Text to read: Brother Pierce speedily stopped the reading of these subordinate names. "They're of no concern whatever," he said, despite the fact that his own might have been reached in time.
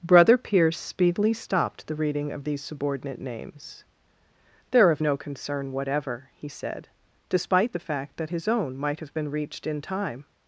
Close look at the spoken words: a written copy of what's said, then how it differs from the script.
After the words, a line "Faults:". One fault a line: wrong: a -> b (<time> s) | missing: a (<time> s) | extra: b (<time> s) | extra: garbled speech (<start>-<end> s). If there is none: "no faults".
Brother Pierce speedily stopped the reading of these subordinate names. "They're of no concern whatever," he said, despite the fact that his own might have been reached in time.
Faults:
no faults